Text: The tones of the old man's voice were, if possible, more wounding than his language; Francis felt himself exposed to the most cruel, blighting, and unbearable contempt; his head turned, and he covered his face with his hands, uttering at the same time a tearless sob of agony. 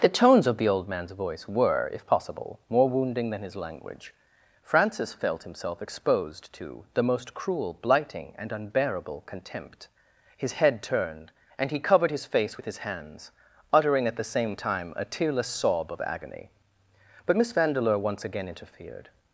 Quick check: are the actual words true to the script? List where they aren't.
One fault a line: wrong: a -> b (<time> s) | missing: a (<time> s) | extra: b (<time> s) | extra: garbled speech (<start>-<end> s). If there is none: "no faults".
extra: But Miss Vandeleur once again interfered (17.3 s)